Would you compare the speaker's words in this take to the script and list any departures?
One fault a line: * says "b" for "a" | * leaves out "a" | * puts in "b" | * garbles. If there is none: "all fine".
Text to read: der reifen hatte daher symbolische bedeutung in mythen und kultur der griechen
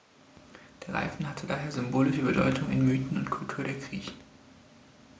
all fine